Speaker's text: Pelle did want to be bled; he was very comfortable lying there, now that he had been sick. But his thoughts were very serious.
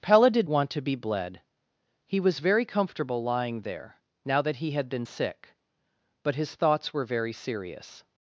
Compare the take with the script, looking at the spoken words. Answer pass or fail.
pass